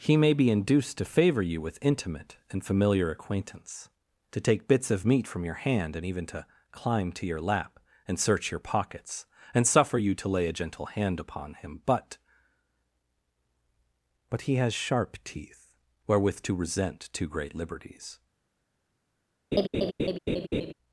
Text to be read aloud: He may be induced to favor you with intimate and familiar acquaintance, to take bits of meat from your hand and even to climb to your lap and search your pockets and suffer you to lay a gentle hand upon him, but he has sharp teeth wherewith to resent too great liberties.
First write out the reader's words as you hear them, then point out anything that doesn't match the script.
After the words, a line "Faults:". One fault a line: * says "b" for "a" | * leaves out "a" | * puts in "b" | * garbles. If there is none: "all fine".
He may be induced to favor you with intimate and familiar acquaintance, to take bits of meat from your hand and even to climb to your lap and search your pockets and suffer you to lay a gentle hand upon him, but but he has sharp teeth wherewith to resent too great liberties.
Faults:
* puts in "but"